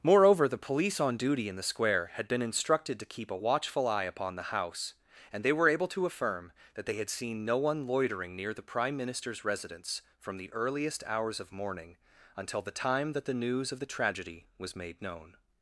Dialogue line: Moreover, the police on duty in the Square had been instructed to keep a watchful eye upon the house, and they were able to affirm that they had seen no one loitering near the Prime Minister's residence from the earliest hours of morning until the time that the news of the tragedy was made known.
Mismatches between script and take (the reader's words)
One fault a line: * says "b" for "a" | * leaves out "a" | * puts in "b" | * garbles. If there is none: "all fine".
all fine